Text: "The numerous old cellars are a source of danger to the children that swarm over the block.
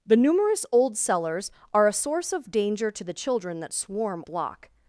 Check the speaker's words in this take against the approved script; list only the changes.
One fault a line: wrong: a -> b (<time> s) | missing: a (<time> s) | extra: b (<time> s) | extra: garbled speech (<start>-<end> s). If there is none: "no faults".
missing: over the (4.2 s)